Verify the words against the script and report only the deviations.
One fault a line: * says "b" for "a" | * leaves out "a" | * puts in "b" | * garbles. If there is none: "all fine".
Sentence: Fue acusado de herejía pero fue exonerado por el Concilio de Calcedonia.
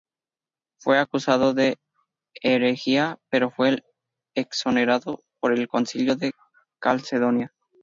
all fine